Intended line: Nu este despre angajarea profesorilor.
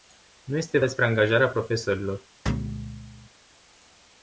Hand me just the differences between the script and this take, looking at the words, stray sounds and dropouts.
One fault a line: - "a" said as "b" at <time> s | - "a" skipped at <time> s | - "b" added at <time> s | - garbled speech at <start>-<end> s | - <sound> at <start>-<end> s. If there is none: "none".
- thud at 2.5-3.3 s